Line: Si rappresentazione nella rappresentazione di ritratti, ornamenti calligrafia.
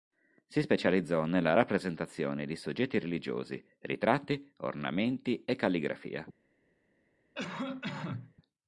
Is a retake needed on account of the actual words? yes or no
yes